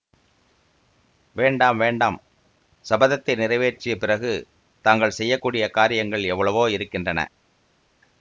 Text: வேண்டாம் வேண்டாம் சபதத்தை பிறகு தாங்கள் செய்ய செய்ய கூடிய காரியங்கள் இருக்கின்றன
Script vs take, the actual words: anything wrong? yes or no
yes